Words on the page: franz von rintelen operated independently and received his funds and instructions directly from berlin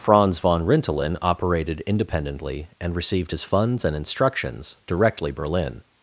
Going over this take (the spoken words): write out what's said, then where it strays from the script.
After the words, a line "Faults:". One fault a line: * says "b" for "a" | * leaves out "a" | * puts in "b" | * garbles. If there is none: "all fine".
franz von rintelen operated independently and received his funds and instructions directly berlin
Faults:
* leaves out "from"